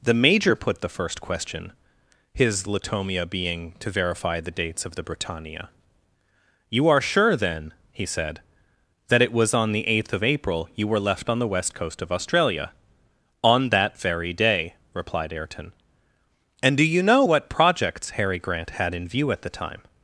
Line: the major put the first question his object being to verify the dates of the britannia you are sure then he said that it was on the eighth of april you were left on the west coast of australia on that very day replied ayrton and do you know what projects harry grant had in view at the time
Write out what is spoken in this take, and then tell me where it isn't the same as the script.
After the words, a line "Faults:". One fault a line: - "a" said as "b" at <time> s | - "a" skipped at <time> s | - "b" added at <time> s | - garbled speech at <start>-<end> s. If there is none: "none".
the major put the first question his latomia being to verify the dates of the britannia you are sure then he said that it was on the eighth of april you were left on the west coast of australia on that very day replied ayrton and do you know what projects harry grant had in view at the time
Faults:
- "object" said as "latomia" at 2.6 s